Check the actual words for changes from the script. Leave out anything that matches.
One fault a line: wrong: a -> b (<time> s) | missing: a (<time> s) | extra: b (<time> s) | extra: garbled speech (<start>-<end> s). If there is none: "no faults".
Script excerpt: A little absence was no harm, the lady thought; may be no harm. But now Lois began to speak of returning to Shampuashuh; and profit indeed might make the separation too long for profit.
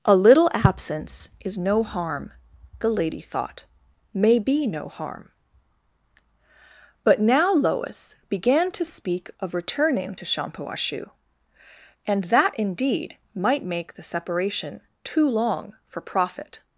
wrong: was -> is (1.4 s)
wrong: profit -> that (12.2 s)